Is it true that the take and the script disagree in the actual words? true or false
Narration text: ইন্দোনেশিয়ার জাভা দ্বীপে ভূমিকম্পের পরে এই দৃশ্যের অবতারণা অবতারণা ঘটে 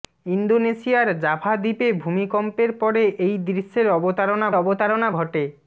false